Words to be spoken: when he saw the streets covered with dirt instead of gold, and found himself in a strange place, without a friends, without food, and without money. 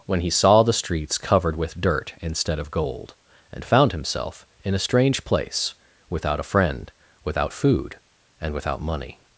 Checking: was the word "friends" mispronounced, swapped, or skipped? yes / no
yes